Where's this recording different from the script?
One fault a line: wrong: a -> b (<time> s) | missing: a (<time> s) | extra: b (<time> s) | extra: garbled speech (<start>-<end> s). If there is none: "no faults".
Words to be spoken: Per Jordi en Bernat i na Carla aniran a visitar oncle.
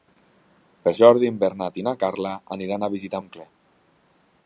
no faults